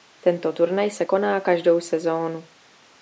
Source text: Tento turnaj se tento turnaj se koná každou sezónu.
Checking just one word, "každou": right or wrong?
right